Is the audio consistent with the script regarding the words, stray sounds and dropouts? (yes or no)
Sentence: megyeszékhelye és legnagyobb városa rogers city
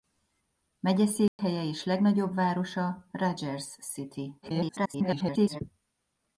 no